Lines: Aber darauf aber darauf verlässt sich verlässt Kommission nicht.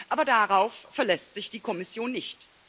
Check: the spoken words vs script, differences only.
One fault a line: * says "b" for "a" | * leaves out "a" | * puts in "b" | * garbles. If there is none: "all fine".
* leaves out "aber darauf"
* says "die" for "verlässt"